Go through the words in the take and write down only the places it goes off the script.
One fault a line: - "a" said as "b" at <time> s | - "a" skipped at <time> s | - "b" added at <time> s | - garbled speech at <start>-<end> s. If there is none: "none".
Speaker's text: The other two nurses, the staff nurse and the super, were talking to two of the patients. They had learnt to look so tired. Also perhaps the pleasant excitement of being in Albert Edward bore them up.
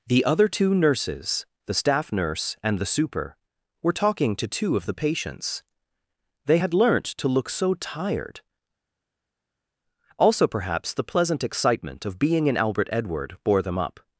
none